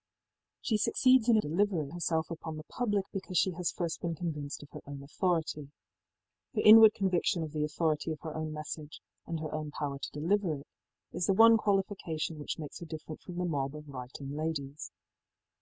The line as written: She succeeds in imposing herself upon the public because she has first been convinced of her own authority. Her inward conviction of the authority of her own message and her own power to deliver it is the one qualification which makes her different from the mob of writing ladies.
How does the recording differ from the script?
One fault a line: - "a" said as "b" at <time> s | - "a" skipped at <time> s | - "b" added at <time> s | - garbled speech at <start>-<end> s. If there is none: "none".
- "imposing" said as "deliver" at 1.4 s